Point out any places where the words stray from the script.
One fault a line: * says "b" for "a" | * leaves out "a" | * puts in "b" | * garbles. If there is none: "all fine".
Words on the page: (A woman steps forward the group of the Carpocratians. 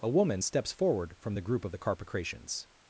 * puts in "from"